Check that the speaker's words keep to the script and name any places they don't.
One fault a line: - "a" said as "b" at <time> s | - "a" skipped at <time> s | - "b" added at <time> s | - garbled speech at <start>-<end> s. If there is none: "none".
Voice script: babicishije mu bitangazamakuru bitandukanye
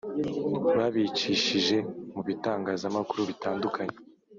none